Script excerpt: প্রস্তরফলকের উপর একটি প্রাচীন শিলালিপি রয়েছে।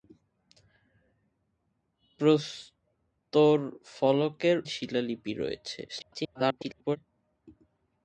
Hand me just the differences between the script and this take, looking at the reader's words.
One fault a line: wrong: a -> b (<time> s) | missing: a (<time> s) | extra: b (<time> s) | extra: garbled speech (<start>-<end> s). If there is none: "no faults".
missing: উপর একটি প্রাচীন (3.7 s)
extra: garbled speech (5.9-7.0 s)